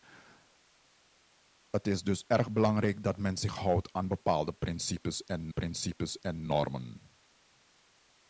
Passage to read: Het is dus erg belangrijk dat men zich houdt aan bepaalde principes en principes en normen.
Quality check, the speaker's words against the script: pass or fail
pass